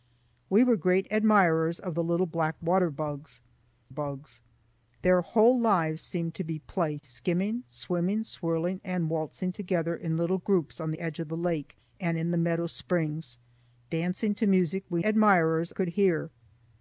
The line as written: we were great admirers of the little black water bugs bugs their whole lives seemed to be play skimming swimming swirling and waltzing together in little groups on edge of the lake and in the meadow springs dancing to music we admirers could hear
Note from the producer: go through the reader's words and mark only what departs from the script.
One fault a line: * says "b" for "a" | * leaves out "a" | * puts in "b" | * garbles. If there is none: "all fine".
all fine